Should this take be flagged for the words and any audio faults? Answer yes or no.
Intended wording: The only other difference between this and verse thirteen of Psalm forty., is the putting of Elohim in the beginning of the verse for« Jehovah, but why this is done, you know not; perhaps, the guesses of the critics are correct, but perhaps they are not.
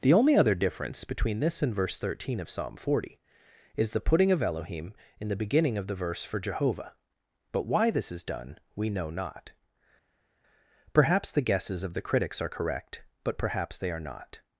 yes